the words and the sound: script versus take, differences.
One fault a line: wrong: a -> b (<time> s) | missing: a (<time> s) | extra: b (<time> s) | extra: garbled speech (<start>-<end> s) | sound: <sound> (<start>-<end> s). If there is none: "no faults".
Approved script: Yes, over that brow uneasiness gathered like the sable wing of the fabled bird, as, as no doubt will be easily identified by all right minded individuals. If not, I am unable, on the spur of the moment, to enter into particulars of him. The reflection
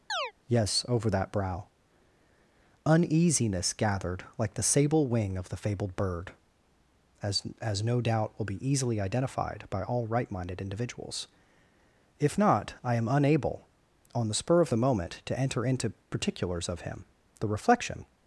sound: chirp (0.1-0.3 s)